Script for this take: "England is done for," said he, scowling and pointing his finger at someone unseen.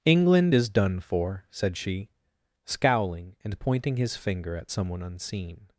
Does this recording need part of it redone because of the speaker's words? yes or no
yes